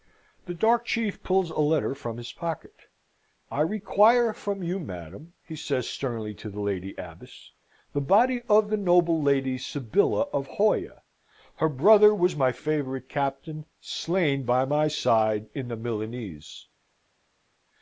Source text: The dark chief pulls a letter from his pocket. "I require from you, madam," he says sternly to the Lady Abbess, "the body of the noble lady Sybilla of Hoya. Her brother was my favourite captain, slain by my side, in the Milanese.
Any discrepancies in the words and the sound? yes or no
no